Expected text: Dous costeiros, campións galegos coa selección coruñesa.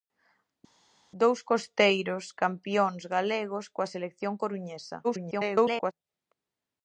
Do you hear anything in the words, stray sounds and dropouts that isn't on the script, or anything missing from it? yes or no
yes